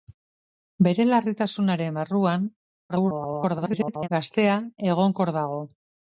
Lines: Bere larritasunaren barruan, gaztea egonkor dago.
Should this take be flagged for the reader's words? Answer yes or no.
yes